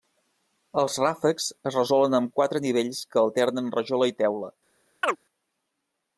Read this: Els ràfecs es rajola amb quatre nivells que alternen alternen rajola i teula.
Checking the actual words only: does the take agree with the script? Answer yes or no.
no